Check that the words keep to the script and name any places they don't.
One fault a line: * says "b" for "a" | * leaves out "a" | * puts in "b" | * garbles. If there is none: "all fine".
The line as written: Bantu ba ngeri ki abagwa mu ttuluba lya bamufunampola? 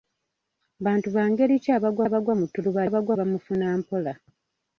* puts in "abagwa"
* says "abagwa" for "lya"